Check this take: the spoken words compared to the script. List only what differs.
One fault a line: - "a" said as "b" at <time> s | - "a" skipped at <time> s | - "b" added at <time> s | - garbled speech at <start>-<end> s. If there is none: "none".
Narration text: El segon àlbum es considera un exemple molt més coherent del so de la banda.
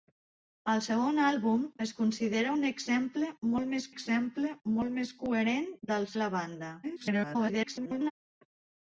- "exemple molt més" added at 3.9 s
- "so" skipped at 6.1 s
- garbled speech at 6.8-8.1 s